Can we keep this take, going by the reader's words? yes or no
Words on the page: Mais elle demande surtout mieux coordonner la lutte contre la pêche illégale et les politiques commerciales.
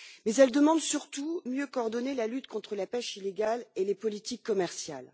yes